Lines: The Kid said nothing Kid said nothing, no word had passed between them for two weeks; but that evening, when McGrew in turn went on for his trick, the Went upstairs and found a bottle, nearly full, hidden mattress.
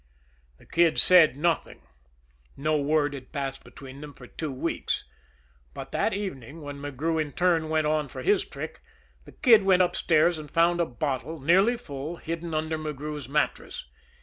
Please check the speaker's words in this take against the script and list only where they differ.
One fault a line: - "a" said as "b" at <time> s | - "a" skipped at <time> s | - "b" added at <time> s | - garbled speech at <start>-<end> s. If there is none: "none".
- "Kid said nothing" skipped at 1.8 s
- "Kid" added at 9.3 s
- "under McGrew's" added at 12.5 s